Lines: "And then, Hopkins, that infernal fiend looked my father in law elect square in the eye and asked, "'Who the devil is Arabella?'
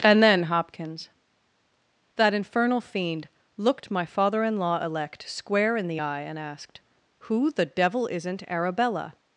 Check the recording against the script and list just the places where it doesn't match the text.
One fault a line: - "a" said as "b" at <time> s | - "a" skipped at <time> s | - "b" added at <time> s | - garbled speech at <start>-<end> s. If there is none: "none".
- "is" said as "isn't" at 8.1 s